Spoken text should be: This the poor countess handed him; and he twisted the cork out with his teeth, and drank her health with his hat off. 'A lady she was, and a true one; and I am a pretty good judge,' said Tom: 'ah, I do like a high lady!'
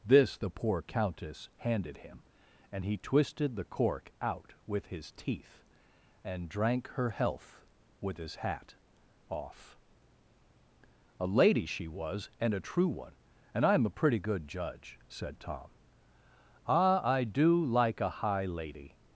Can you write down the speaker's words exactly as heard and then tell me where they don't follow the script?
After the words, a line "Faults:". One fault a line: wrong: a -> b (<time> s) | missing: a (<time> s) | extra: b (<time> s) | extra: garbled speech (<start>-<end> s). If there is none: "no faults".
This the poor countess handed him; and he twisted the cork out with his teeth, and drank her health with his hat off. 'A lady she was, and a true one; and I am a pretty good judge,' said Tom: 'ah, I do like a high lady!'
Faults:
no faults